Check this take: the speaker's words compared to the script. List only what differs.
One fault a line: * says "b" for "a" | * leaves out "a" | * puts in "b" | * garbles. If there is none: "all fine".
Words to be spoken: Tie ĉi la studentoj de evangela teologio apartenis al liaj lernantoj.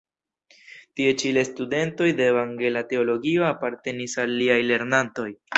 all fine